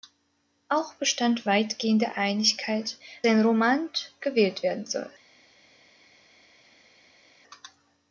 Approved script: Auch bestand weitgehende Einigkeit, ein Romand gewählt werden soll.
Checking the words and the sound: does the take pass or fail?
pass